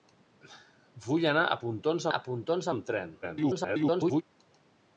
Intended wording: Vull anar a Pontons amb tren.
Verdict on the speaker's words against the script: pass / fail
fail